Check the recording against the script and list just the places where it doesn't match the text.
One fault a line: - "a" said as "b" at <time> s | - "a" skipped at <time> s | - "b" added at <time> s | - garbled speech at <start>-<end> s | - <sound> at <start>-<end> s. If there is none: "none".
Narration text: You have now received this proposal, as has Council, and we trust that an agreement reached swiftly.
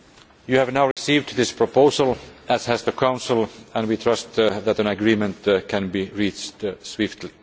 - dropout at 0.9-1.0 s
- "the" added at 2.8 s
- "can be" added at 5.7 s